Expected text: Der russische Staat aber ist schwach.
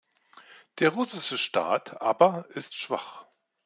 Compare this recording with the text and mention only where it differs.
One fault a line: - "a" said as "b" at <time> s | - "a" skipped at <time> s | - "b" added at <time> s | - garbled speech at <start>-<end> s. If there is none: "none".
none